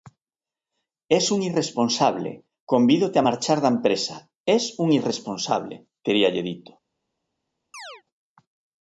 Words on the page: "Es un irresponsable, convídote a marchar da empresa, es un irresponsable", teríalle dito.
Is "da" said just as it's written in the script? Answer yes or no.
yes